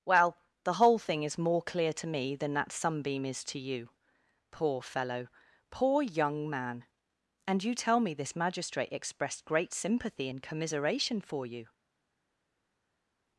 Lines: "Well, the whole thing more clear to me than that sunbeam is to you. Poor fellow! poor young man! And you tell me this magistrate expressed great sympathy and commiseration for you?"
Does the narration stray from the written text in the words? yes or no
yes